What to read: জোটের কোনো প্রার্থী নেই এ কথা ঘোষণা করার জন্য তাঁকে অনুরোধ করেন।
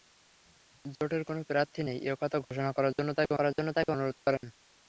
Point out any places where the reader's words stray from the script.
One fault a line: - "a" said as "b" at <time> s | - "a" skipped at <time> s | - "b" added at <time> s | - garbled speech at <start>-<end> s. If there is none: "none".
- "করার জন্য তাঁকে" added at 3.4 s